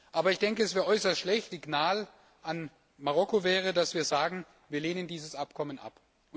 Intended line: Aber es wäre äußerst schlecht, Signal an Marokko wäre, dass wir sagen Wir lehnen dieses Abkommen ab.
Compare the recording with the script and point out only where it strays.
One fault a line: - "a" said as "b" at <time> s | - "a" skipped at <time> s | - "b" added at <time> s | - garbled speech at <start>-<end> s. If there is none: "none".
none